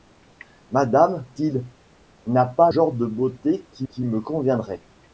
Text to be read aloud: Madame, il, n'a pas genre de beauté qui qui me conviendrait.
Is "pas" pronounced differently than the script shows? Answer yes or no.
no